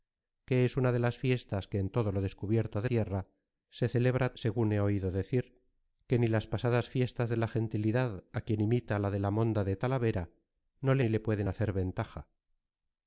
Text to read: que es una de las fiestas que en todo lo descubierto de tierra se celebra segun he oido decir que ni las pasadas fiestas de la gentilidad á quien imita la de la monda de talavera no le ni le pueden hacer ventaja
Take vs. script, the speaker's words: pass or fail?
pass